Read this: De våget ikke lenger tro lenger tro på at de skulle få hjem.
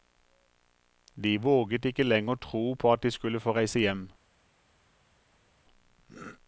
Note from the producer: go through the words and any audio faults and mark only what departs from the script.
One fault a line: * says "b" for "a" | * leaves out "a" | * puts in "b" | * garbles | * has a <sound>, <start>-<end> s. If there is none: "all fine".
* leaves out "lenger tro"
* puts in "reise"